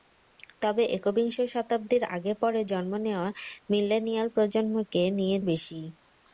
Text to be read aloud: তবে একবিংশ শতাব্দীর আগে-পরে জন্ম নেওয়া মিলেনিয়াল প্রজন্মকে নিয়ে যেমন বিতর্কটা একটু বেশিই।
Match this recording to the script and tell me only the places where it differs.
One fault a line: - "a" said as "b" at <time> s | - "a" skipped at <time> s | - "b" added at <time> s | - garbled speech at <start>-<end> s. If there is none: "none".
- "যেমন বিতর্কটা একটু" skipped at 5.4 s